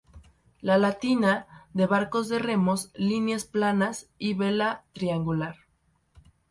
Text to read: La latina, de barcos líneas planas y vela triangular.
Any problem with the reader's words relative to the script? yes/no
yes